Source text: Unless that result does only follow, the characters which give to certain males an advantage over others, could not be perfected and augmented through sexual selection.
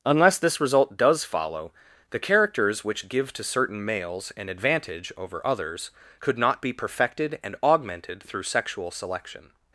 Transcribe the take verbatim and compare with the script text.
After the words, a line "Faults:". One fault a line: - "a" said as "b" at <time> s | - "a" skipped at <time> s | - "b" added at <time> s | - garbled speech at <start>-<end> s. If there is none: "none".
Unless this result does follow, the characters which give to certain males an advantage over others, could not be perfected and augmented through sexual selection.
Faults:
- "that" said as "this" at 0.4 s
- "only" skipped at 1.2 s